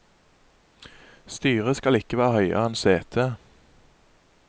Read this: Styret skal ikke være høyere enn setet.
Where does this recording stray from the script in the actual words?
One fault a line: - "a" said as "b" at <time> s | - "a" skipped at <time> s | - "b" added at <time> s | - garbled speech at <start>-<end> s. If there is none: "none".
none